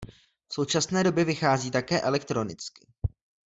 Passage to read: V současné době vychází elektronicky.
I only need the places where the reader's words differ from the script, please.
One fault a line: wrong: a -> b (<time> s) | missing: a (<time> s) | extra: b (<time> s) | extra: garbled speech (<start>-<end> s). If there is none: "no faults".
extra: také (1.7 s)